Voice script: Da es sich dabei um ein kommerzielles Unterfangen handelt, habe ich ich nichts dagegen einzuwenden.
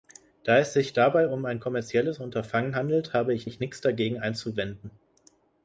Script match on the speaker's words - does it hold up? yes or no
yes